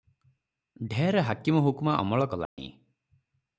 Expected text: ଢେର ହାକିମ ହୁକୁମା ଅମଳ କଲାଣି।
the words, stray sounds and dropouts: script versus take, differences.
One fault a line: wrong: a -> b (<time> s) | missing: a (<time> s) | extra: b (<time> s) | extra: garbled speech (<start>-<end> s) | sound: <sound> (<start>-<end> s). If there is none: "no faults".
sound: dropout (2.5-2.6 s)